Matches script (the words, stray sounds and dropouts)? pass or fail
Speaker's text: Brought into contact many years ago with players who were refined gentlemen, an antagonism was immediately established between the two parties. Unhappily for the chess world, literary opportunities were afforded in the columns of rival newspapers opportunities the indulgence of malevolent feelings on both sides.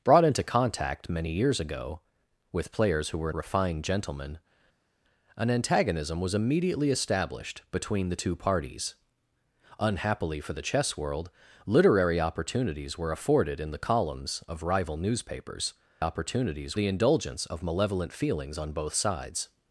pass